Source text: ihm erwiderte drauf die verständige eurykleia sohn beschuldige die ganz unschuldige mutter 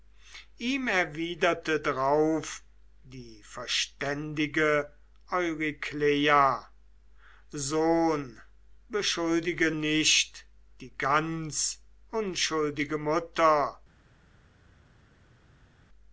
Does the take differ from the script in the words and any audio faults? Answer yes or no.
yes